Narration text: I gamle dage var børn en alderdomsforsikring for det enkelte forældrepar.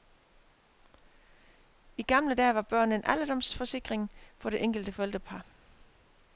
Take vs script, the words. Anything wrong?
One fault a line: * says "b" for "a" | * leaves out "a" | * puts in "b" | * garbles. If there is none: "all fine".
all fine